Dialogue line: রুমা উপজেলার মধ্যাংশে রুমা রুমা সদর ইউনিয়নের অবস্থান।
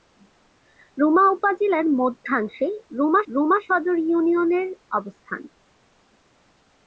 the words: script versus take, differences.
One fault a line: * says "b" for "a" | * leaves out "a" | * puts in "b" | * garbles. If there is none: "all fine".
all fine